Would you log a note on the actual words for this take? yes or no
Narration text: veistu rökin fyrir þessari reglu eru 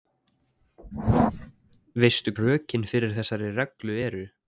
no